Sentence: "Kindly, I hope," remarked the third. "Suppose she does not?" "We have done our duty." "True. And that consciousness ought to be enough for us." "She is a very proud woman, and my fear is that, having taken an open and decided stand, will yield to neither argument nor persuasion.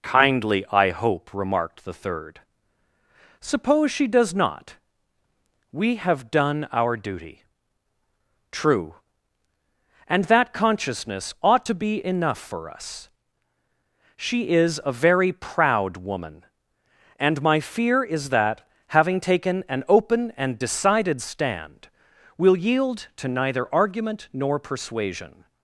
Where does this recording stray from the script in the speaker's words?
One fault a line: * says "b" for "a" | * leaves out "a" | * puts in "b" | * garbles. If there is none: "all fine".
all fine